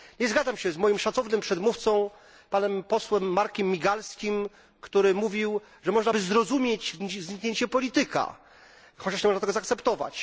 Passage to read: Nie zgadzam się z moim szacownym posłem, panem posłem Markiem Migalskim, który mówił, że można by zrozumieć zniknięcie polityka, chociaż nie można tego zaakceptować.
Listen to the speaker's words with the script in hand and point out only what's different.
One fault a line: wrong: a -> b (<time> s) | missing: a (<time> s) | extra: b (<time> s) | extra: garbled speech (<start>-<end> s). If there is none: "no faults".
wrong: posłem -> przedmówcą (1.4 s)